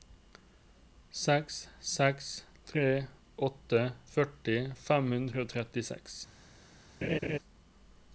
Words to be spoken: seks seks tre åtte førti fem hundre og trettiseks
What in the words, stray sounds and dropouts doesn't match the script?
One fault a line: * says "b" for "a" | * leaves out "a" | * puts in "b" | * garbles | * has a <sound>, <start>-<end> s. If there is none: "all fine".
* has a laugh, 7.0-7.4 s